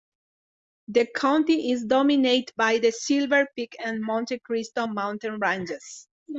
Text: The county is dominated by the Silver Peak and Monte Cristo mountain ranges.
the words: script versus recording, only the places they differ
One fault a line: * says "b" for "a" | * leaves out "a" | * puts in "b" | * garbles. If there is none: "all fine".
all fine